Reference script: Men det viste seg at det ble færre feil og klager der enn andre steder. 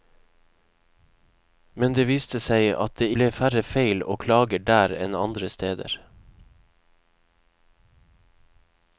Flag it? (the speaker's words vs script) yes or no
no